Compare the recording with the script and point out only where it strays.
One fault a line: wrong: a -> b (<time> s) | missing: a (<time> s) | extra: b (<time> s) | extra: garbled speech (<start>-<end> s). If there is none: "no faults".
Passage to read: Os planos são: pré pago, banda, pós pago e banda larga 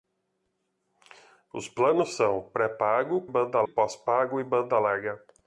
no faults